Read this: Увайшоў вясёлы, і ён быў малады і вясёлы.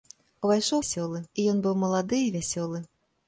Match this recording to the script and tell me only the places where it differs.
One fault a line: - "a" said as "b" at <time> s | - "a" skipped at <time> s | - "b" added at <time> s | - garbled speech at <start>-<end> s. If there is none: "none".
none